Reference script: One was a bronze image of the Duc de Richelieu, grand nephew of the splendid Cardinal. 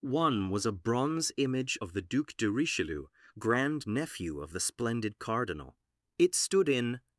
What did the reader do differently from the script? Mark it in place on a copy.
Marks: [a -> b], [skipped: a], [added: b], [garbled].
One was a bronze image of the Duc de Richelieu, grand nephew of the splendid Cardinal. [added: It stood in]